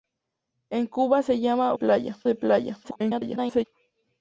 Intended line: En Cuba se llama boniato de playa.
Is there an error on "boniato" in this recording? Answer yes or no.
yes